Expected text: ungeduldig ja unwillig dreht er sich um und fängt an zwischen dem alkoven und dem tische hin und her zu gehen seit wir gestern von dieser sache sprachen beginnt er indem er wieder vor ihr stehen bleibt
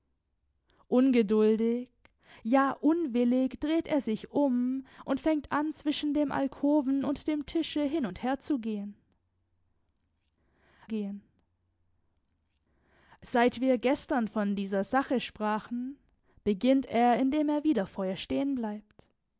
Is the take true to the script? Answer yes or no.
no